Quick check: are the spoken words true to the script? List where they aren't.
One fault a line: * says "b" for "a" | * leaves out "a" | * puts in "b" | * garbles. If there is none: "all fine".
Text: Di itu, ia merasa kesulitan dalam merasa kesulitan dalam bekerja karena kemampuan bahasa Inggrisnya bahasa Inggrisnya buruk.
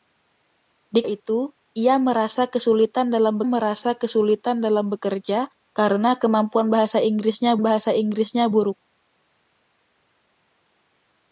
all fine